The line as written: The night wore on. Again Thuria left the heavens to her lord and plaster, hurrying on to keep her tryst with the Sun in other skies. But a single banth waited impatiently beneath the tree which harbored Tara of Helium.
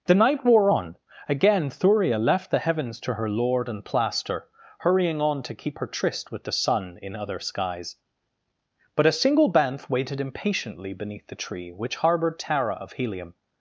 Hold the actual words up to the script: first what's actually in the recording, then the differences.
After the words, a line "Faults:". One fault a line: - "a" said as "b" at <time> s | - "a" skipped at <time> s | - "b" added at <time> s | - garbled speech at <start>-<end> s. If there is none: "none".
The night wore on. Again Thuria left the heavens to her lord and plaster, hurrying on to keep her tryst with the Sun in other skies. But a single banth waited impatiently beneath the tree which harbored Tara of Helium.
Faults:
none